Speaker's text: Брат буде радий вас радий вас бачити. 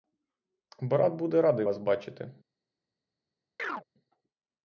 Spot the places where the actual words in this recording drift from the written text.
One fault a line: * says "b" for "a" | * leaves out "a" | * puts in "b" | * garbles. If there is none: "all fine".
* leaves out "радий вас"